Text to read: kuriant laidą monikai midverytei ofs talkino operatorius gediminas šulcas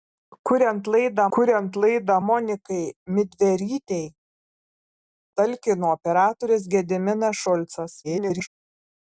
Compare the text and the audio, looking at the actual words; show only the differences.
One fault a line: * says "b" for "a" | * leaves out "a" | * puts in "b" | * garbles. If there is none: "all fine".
* puts in "kuriant laidą"
* leaves out "ofs"
* garbles